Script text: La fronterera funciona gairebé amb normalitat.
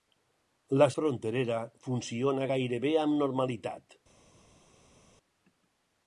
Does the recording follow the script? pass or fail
pass